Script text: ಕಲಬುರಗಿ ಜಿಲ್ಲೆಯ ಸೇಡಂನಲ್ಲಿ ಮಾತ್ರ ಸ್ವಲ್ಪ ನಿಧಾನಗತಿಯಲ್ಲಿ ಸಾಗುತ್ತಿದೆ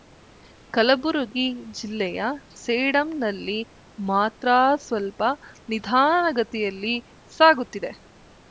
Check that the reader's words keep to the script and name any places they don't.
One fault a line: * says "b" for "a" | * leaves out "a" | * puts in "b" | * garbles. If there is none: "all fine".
all fine